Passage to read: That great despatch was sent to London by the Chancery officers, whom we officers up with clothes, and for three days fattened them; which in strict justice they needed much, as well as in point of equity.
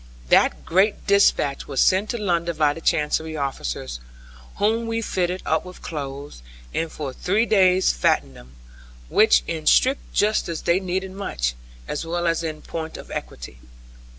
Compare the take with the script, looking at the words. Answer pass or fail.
fail